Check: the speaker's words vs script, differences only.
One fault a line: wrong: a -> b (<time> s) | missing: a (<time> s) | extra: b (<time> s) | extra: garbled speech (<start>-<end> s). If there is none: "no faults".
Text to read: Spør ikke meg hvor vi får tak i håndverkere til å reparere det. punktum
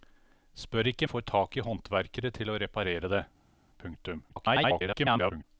missing: meg hvor vi (1.1 s)
extra: garbled speech (4.3-5.4 s)